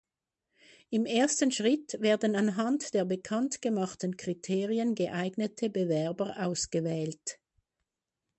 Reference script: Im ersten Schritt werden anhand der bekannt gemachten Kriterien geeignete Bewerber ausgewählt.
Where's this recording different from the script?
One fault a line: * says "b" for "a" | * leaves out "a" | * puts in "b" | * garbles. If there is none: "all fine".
all fine